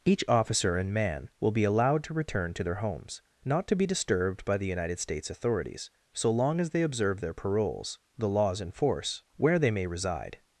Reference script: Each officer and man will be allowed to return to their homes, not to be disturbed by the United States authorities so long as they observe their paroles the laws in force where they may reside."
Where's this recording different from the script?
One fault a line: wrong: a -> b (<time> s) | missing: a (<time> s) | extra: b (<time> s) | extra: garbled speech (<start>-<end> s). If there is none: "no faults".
no faults